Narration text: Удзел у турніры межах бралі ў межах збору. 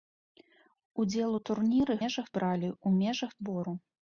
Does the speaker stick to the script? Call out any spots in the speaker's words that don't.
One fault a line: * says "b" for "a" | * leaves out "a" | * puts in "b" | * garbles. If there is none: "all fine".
all fine